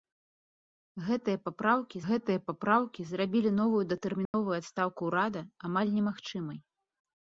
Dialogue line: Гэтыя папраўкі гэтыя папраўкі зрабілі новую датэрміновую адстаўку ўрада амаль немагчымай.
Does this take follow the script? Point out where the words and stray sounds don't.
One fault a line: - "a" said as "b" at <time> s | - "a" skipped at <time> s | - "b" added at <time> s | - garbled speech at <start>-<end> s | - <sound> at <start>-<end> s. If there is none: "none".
- dropout at 4.3-4.3 s